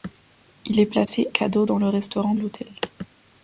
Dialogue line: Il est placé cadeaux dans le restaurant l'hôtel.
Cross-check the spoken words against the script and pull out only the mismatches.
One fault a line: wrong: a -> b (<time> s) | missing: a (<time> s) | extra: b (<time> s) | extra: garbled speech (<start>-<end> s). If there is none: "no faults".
no faults